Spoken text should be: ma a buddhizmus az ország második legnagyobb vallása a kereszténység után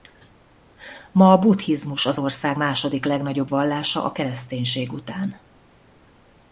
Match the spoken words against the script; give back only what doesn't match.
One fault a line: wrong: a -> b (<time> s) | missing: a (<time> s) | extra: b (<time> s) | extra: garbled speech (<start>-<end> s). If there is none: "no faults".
no faults